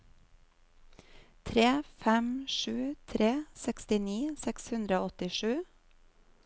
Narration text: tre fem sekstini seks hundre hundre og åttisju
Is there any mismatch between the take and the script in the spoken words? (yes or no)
yes